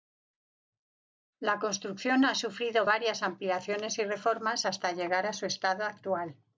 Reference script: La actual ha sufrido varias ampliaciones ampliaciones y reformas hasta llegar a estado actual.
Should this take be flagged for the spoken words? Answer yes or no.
yes